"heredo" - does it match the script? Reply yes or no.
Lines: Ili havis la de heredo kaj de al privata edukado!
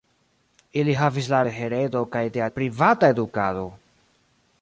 yes